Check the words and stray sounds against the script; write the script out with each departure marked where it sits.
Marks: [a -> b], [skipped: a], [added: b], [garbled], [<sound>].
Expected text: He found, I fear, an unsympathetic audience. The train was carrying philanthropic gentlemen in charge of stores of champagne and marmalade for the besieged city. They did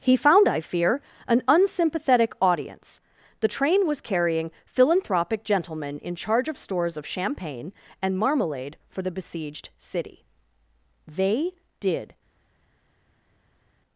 He found, I fear, an unsympathetic audience. The train was carrying philanthropic gentlemen in charge of stores of champagne and marmalade for the besieged city. They did